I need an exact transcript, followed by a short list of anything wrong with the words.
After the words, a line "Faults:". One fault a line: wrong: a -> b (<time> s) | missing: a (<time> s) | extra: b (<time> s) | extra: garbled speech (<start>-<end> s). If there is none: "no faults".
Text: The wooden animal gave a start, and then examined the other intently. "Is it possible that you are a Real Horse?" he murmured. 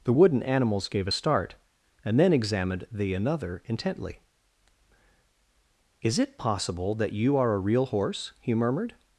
The wooden animals gave a start, and then examined the another intently. "Is it possible that you are a Real Horse?" he murmured.
Faults:
wrong: animal -> animals (0.4 s)
wrong: other -> another (3.1 s)